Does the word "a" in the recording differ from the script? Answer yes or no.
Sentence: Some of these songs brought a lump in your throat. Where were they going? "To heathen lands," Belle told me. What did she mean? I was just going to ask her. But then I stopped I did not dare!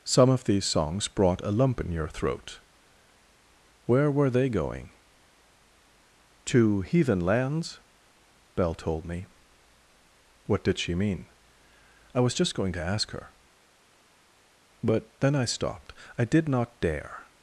no